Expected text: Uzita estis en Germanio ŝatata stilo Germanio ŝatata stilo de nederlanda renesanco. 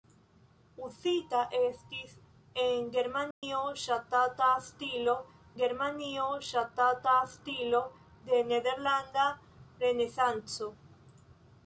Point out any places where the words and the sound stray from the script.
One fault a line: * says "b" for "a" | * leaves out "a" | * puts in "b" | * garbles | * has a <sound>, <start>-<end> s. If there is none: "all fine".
* has a dropout, 3.3-3.4 s